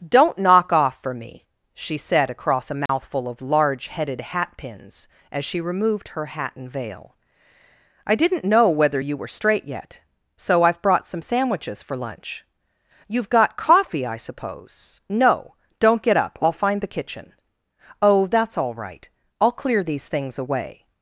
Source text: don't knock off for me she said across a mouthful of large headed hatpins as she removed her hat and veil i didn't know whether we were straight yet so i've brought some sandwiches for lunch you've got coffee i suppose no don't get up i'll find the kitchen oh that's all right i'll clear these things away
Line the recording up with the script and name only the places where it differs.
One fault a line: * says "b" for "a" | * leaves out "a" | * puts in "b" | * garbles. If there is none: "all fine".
* says "you" for "we"